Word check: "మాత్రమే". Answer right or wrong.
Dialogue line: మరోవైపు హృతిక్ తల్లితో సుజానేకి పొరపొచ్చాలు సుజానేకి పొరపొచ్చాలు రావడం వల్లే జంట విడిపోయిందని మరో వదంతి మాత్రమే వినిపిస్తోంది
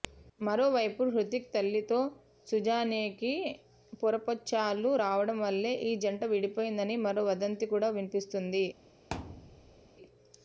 wrong